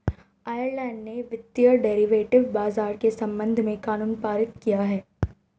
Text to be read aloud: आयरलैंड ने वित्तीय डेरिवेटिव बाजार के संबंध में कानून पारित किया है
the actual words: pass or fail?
pass